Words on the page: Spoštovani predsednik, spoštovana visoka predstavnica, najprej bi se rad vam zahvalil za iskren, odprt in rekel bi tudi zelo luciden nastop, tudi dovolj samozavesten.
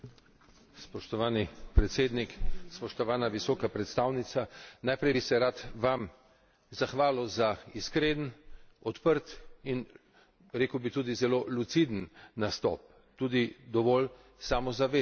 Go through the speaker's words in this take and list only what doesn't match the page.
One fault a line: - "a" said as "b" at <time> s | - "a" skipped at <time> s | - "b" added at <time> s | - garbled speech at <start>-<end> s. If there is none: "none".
none